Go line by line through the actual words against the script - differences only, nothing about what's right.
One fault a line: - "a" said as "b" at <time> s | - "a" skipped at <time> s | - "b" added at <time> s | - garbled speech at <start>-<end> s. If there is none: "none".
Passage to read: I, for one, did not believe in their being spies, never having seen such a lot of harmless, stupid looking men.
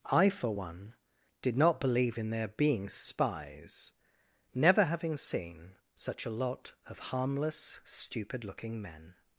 none